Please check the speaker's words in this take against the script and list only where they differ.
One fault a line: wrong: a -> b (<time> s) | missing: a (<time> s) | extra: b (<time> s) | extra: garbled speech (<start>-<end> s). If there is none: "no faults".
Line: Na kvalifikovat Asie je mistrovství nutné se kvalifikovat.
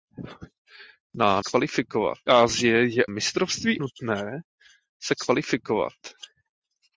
no faults